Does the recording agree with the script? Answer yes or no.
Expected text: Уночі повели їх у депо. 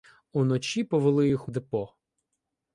yes